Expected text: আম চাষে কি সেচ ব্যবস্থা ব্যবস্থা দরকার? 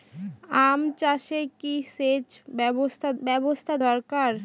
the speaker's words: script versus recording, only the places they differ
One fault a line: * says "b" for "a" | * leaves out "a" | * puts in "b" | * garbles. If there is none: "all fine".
all fine